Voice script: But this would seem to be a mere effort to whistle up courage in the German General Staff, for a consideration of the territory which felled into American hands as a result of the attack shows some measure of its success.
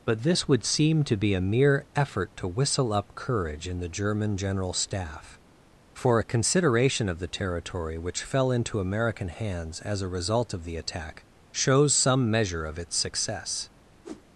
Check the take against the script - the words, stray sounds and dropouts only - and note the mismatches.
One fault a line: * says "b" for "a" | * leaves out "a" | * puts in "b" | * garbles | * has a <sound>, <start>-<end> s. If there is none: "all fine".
* says "fell" for "felled"
* has a whoosh, 14.0-14.3 s